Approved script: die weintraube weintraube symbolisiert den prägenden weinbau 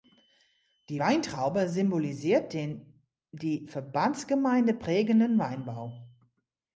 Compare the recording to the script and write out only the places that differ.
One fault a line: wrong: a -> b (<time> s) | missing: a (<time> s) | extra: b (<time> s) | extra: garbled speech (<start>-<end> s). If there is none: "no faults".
missing: weintraube (1.7 s)
extra: die verbandsgemeinde (3.3 s)